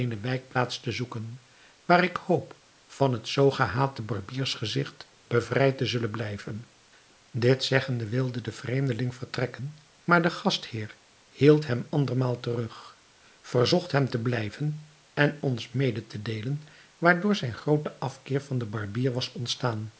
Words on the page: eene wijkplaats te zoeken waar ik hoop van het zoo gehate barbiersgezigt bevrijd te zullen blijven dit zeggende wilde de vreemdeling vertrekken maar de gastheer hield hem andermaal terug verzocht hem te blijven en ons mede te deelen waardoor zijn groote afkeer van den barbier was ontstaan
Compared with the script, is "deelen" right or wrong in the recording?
right